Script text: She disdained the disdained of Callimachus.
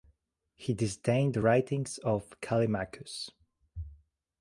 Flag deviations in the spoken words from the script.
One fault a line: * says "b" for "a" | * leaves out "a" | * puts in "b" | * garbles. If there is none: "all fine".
* says "He" for "She"
* says "writings" for "disdained"